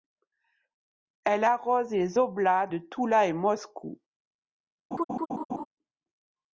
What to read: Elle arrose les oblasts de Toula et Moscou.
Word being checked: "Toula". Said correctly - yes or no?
yes